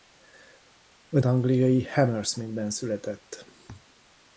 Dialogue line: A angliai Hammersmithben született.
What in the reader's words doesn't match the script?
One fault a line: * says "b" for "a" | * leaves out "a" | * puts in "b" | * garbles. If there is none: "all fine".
all fine